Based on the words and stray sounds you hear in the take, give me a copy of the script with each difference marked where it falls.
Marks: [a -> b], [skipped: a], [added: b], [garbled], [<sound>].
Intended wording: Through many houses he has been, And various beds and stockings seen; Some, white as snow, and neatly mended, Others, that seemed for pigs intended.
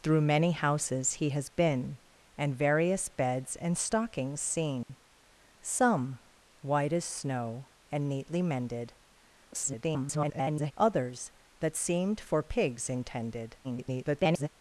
Through many houses he has been, And various beds and stockings seen; [dropout] Some, white as snow, and neatly mended, [garbled] Others, that seemed for pigs intended. [garbled]